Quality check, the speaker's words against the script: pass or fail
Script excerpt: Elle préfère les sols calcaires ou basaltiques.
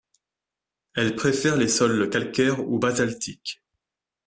pass